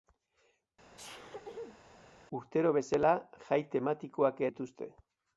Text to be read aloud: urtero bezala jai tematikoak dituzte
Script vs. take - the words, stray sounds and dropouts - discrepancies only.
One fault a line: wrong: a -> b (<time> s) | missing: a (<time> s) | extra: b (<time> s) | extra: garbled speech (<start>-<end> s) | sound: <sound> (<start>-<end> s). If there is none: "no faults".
sound: sneeze (1.0-1.8 s)